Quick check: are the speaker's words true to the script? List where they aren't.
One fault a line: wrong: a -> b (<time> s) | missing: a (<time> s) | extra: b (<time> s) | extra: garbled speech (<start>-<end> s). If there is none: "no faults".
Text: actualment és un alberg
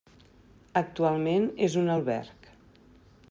no faults